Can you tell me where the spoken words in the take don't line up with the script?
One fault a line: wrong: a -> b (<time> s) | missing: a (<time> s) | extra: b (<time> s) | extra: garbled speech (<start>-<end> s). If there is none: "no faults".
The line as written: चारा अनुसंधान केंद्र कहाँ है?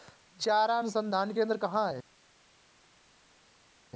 no faults